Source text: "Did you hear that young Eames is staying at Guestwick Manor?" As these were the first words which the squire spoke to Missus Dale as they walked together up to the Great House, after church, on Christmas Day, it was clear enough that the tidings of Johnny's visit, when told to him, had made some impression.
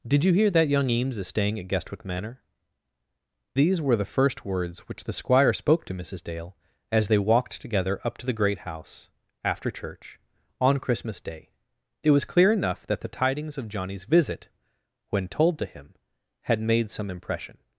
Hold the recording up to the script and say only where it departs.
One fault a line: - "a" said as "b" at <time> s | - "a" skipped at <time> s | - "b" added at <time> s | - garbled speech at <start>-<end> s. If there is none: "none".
- "As" skipped at 2.4 s